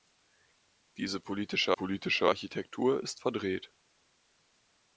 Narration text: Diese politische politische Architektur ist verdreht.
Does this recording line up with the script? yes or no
yes